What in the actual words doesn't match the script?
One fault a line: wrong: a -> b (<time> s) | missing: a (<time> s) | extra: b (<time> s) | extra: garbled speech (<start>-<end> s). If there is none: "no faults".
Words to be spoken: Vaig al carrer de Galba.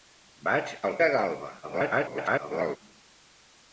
missing: carrer (0.9 s)
extra: garbled speech (1.6-2.8 s)